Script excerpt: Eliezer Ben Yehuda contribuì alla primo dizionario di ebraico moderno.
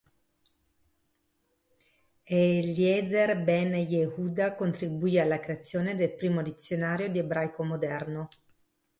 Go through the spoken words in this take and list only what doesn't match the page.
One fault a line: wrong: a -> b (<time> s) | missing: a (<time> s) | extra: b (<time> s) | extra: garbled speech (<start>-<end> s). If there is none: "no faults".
extra: creazione del (5.4 s)